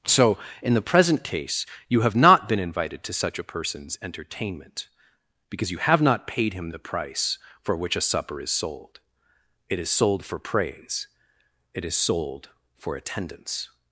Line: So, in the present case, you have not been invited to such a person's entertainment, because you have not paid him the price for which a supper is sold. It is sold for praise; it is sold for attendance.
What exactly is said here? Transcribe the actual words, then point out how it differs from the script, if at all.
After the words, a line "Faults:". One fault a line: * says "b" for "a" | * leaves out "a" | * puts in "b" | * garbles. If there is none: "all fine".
So, in the present case, you have not been invited to such a person's entertainment, because you have not paid him the price for which a supper is sold. It is sold for praise; it is sold for attendance.
Faults:
all fine